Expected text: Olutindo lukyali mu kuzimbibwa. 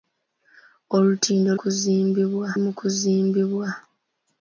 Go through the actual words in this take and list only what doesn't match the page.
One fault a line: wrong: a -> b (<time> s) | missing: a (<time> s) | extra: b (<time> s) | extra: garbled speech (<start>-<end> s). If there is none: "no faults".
wrong: lukyali -> kuzimbibwa (1.6 s)